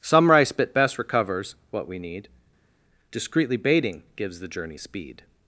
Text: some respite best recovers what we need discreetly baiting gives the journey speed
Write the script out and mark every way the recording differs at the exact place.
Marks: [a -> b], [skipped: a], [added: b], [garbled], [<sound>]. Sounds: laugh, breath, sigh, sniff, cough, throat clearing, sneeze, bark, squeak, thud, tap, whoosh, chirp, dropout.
some [respite -> rice bit] best recovers what we need discreetly baiting gives the journey speed